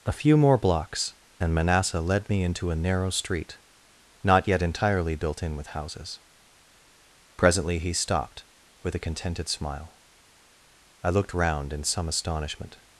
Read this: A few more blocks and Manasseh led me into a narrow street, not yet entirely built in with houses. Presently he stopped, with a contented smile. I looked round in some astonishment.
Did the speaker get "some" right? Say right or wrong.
right